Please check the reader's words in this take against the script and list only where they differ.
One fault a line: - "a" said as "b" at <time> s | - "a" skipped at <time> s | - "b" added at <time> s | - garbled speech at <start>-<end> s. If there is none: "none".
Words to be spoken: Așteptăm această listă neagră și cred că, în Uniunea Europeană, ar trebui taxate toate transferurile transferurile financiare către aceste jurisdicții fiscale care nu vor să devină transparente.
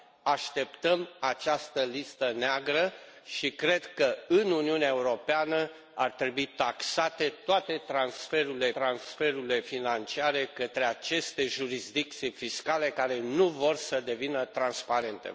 none